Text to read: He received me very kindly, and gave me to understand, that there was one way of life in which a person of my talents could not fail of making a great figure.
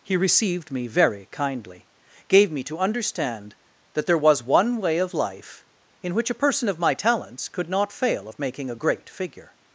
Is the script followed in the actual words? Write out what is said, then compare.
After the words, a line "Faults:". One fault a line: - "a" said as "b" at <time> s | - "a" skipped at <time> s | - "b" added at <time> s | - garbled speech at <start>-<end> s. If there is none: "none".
He received me very kindly, gave me to understand, that there was one way of life in which a person of my talents could not fail of making a great figure.
Faults:
- "and" skipped at 1.9 s